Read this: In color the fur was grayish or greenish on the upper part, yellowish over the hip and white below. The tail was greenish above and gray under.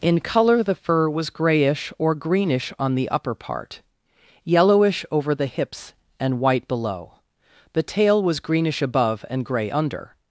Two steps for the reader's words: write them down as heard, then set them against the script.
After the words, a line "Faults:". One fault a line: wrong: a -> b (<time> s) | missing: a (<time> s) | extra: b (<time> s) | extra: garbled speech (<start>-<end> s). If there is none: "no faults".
In color the fur was grayish or greenish on the upper part, yellowish over the hips and white below. The tail was greenish above and gray under.
Faults:
wrong: hip -> hips (5.5 s)